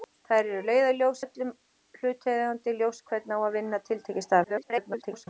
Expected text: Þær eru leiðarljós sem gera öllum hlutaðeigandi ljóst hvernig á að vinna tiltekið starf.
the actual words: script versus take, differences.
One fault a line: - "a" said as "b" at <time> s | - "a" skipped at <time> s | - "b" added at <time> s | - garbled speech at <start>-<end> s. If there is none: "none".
- "sem gera" skipped at 1.2 s
- garbled speech at 4.4-5.3 s